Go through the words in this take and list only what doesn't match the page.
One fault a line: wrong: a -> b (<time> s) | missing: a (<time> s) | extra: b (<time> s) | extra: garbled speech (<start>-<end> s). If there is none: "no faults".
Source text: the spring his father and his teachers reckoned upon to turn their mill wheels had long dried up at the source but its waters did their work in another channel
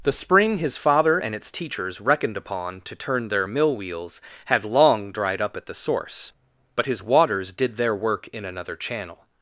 wrong: his -> its (1.3 s)
wrong: its -> his (6.9 s)